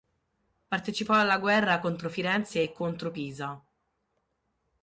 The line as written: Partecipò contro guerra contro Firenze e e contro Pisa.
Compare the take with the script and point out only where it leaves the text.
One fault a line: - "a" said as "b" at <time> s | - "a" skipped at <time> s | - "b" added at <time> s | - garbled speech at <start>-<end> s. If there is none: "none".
- "contro" said as "alla" at 1.1 s
- "e" skipped at 2.7 s